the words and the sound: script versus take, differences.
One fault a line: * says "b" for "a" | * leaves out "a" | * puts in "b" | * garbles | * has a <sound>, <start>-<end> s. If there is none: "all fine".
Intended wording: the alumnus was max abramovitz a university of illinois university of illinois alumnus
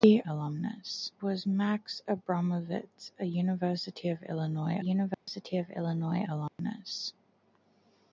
* has a dropout, 5.1-5.3 s
* has a dropout, 6.5-6.6 s